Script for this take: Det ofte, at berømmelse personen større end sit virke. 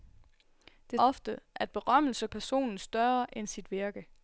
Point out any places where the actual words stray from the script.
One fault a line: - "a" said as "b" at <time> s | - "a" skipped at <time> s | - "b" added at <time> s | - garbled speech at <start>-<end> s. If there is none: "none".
none